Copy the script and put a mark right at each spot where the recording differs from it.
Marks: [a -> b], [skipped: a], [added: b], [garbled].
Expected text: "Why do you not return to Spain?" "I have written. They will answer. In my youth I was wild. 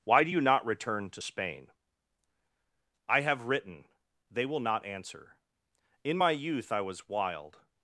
"Why do you not return to Spain?" "I have written. They will [added: not] answer. In my youth I was wild.